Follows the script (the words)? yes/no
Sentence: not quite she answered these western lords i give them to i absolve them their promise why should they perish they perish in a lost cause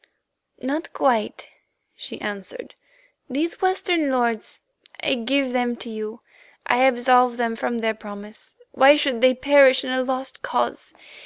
no